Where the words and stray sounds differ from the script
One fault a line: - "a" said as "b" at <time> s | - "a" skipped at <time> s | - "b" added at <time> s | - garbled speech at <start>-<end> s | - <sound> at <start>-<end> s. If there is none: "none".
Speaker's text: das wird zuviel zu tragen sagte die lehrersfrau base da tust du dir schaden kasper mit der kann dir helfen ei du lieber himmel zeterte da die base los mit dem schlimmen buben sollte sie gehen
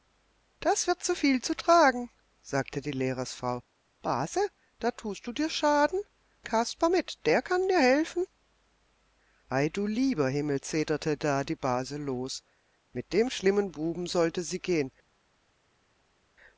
none